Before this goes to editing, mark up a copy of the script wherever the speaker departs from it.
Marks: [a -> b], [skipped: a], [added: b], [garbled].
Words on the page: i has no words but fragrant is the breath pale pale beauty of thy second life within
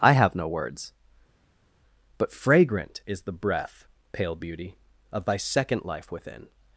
i [has -> have] no words but fragrant is the breath pale [skipped: pale] beauty of thy second life within